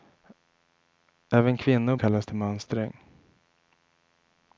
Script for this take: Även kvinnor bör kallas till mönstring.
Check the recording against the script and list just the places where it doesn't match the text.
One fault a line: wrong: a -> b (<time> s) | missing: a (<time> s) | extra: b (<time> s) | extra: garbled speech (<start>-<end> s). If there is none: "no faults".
missing: bör (1.9 s)